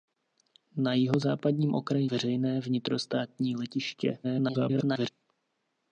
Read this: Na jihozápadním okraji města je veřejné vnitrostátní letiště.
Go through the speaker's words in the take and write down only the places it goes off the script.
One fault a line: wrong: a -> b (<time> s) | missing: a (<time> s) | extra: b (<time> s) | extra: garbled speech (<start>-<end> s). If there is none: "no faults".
missing: města je (2.1 s)
extra: garbled speech (4.2-5.1 s)